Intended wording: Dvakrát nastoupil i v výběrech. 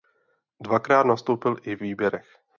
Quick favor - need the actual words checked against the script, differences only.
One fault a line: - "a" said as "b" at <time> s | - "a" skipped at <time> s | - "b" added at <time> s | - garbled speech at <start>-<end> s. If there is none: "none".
none